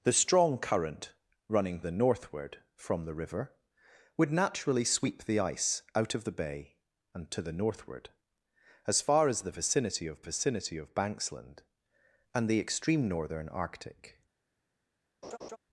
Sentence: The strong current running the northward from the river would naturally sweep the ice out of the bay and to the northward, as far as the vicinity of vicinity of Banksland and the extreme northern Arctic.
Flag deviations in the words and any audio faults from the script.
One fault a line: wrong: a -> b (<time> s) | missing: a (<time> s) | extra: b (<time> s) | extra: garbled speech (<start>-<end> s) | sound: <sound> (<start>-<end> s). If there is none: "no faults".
sound: laugh (15.2-15.6 s)